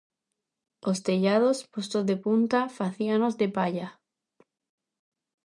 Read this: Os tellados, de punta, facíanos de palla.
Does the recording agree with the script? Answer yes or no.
no